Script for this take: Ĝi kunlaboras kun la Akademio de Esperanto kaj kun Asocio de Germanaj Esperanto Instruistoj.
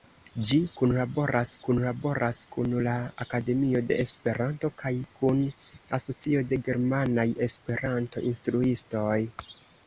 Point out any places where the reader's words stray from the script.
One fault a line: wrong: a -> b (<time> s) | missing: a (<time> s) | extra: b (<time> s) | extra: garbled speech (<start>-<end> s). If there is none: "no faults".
extra: kunlaboras (1.6 s)